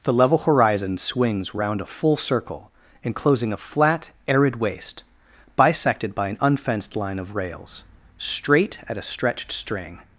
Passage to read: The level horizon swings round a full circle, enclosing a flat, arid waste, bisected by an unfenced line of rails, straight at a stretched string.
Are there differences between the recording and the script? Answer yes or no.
no